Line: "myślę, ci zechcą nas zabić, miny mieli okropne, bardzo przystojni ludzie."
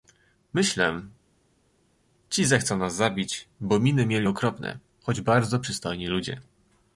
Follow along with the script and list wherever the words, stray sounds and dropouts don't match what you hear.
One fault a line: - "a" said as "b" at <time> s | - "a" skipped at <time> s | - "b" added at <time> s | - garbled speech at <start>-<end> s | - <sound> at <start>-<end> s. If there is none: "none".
- "bo" added at 3.6 s
- "choć" added at 5.0 s